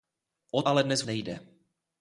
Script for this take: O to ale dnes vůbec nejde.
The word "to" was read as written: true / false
false